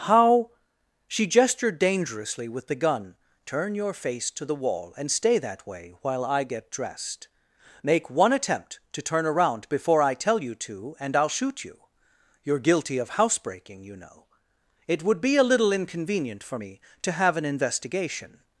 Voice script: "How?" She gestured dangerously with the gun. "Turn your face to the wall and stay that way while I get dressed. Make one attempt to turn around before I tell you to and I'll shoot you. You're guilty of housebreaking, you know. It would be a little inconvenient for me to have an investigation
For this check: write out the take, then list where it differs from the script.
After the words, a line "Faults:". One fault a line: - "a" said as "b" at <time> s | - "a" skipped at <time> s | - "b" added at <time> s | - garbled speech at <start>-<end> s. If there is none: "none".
"How?" She gestured dangerously with the gun. "Turn your face to the wall and stay that way while I get dressed. Make one attempt to turn around before I tell you to and I'll shoot you. You're guilty of housebreaking, you know. It would be a little inconvenient for me to have an investigation
Faults:
none